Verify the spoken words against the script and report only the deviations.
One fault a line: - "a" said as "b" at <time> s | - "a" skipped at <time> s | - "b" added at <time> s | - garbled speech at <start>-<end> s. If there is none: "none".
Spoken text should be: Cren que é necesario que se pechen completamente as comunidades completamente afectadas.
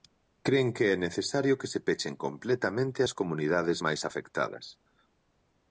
- "completamente" said as "máis" at 3.9 s